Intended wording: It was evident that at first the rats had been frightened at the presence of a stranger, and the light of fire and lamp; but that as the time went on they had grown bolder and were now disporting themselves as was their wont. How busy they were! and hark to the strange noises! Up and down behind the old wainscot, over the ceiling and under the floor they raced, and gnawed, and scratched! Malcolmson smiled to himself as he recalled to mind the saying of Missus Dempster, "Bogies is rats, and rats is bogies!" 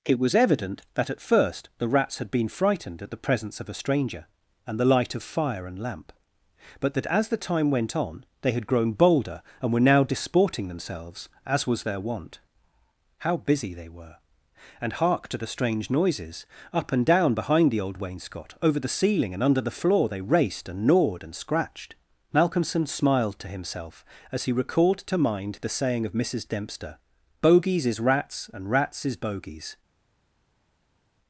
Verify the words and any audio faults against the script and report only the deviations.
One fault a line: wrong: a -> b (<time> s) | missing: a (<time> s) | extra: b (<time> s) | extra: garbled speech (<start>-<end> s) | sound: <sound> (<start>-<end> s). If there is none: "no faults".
no faults